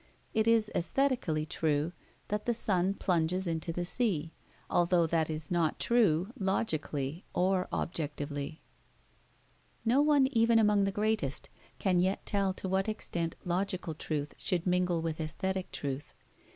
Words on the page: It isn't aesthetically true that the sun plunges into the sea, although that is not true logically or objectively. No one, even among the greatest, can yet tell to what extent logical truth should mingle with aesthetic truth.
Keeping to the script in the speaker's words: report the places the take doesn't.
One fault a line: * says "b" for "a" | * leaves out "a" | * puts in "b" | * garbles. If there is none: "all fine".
* says "is" for "isn't"